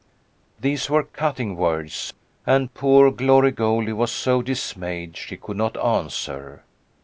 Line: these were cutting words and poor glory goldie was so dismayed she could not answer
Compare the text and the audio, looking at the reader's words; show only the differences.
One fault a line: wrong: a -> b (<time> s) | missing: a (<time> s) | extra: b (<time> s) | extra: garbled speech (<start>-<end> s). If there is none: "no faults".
no faults